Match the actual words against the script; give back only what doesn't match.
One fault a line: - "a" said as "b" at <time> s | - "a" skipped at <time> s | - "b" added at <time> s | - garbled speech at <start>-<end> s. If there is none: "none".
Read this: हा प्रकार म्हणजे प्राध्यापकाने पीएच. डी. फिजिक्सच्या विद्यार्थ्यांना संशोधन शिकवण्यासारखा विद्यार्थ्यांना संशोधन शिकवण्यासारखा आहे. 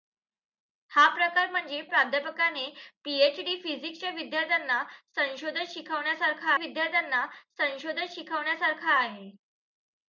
none